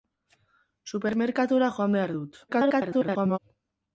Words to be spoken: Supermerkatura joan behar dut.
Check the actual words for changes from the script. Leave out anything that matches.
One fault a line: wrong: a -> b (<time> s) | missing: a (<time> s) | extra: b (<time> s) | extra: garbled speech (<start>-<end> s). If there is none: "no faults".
extra: garbled speech (2.5-3.4 s)